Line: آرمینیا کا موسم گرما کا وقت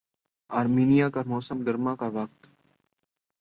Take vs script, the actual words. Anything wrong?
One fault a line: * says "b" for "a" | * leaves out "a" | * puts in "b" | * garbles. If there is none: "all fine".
all fine